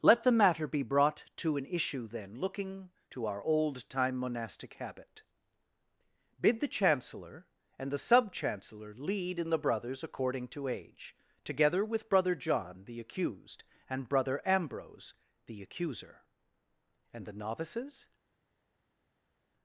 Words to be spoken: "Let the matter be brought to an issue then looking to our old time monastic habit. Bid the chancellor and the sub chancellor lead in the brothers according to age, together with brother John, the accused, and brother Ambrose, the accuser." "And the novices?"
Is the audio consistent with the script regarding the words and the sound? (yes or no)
yes